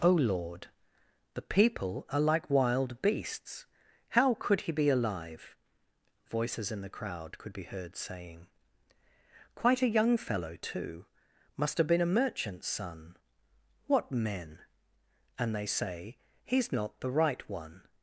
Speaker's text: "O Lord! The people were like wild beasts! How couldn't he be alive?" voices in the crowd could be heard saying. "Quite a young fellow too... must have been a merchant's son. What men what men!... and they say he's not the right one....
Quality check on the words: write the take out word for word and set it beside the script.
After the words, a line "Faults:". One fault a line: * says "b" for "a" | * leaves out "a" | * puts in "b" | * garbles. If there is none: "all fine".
"O Lord! The people are like wild beasts! How could he be alive?" voices in the crowd could be heard saying. "Quite a young fellow too... must have been a merchant's son. What men!... and they say he's not the right one....
Faults:
* says "are" for "were"
* says "could" for "couldn't"
* leaves out "what men"